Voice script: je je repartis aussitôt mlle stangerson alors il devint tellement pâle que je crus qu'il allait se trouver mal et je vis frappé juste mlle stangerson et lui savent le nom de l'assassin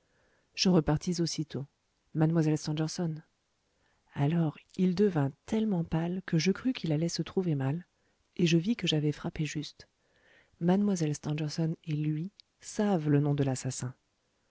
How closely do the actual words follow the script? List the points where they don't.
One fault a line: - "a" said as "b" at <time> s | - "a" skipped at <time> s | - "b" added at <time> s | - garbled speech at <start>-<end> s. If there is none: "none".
- "je" skipped at 0.7 s
- "que j'avais" added at 8.8 s